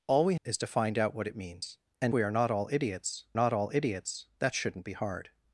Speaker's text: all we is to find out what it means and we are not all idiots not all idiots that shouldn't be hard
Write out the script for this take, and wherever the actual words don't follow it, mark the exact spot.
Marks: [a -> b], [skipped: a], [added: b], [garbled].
all we is to find out what it means and we are not all idiots not all idiots that shouldn't be hard